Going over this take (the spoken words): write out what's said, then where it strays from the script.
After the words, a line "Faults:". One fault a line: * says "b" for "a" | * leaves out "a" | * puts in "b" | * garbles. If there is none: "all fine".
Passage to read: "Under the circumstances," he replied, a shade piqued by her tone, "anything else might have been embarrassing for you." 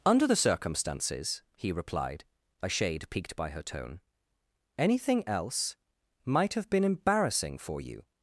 "Under the circumstances," he replied, a shade piqued by her tone, "anything else might have been embarrassing for you."
Faults:
all fine